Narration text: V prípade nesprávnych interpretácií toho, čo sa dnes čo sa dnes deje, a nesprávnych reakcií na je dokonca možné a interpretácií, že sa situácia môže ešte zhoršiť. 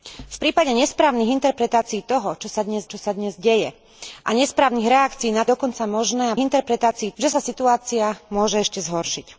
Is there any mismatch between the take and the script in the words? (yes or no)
no